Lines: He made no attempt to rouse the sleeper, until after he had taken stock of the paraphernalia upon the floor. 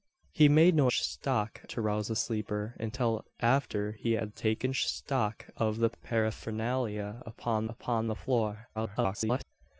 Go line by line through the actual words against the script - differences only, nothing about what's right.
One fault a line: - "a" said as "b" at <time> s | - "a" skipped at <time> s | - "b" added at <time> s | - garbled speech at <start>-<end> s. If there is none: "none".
- "attempt" said as "stock" at 0.9 s
- "upon" added at 7.7 s
- garbled speech at 8.7-9.4 s